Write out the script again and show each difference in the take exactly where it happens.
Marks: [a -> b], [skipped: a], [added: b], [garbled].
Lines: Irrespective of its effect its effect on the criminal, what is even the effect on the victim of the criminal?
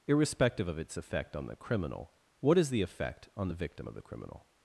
Irrespective of its effect [skipped: its effect] on the criminal, what is [skipped: even] the effect on the victim of the criminal?